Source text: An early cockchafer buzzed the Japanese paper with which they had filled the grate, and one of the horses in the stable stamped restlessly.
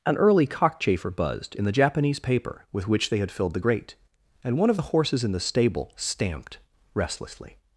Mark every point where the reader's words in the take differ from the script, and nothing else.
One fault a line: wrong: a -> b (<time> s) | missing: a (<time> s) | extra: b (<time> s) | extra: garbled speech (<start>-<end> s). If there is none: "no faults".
extra: in (1.5 s)